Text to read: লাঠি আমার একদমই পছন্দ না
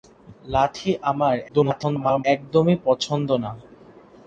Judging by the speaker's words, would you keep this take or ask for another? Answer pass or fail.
fail